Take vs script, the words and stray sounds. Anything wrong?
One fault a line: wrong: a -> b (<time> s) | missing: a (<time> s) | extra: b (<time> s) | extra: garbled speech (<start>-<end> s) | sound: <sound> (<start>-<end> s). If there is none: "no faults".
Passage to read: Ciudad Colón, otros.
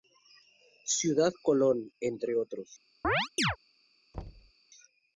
extra: entre (2.0 s)
sound: chirp (3.0-3.6 s)
sound: thud (4.1-4.5 s)